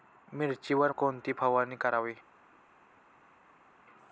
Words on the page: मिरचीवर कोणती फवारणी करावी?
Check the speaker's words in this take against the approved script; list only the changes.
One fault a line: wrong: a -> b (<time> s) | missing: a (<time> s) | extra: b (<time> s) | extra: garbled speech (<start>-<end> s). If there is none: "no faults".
no faults